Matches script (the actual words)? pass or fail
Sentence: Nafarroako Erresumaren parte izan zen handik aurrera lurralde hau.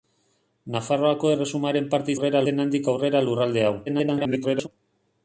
fail